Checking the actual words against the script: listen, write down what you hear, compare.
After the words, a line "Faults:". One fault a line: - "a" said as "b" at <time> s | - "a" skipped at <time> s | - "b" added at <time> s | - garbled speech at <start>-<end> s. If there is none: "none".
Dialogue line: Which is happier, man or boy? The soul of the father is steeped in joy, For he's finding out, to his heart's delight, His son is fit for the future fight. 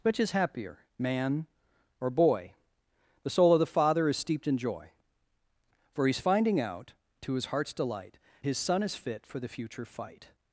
Which is happier, man or boy? The soul of the father is steeped in joy, For he's finding out, to his heart's delight, His son is fit for the future fight.
Faults:
none